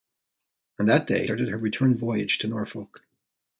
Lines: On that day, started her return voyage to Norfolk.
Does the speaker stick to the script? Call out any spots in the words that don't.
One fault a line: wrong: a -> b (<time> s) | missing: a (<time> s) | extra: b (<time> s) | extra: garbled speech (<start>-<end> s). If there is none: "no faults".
no faults